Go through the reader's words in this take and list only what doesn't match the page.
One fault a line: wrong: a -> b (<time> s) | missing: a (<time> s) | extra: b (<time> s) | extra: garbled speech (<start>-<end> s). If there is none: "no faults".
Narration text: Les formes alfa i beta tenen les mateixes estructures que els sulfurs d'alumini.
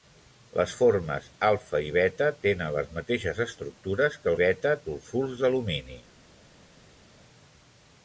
wrong: els -> beta (4.4 s)